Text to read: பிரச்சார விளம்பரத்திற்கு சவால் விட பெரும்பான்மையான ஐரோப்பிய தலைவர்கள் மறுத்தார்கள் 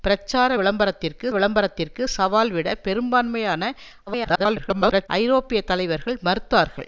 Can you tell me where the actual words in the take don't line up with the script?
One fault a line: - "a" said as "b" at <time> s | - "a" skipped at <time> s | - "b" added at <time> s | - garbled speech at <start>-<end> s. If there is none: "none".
- "விளம்பரத்திற்கு" added at 1.3 s
- garbled speech at 4.1-5.1 s